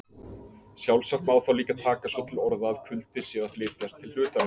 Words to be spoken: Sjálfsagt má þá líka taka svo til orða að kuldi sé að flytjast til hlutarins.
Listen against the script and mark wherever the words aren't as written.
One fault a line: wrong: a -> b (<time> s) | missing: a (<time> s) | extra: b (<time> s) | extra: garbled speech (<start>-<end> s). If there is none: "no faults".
no faults